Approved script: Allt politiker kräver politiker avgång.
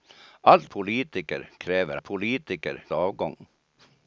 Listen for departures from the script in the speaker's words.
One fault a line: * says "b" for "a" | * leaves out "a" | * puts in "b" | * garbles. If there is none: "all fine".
all fine